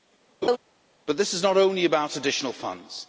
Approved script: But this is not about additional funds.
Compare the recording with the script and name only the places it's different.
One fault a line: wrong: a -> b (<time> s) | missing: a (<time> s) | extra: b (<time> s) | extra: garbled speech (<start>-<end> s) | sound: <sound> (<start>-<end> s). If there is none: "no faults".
sound: laugh (0.4-0.6 s)
extra: only (1.6 s)